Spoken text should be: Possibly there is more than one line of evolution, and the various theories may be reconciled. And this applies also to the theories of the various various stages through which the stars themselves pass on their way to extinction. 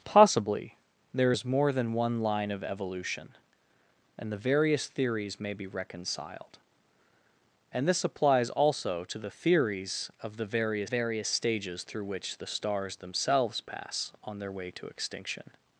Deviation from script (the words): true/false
false